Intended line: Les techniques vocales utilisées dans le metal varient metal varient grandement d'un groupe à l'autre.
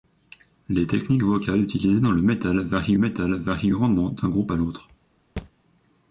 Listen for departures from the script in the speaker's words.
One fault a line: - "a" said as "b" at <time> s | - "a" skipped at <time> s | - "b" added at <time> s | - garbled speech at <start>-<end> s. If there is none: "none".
none